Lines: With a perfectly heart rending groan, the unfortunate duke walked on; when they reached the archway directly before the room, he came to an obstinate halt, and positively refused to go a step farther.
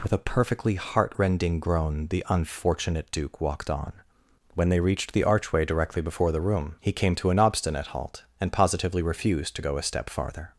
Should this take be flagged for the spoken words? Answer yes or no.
no